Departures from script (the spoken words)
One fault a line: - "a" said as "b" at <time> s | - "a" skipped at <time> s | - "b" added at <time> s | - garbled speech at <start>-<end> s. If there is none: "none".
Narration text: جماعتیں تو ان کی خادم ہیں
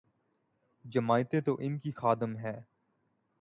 none